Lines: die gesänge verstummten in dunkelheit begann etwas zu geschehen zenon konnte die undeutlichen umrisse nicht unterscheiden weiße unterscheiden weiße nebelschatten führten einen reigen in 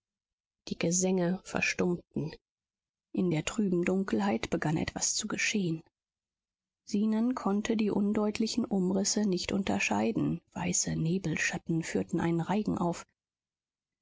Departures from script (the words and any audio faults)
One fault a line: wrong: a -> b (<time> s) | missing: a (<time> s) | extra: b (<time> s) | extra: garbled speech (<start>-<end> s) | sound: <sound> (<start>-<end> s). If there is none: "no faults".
extra: der trüben (3.3 s)
missing: unterscheiden weiße (11.0 s)
wrong: in -> auf (12.8 s)